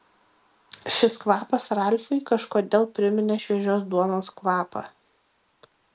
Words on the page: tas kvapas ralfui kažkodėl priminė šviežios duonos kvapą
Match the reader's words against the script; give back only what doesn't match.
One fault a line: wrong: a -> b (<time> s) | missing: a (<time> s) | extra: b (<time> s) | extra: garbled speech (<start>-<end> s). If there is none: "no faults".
wrong: tas -> šis (0.9 s)